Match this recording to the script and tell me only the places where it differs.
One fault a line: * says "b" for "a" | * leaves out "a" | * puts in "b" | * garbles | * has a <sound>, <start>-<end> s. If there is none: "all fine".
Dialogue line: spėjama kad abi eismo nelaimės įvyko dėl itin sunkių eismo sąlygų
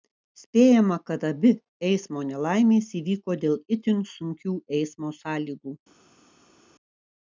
all fine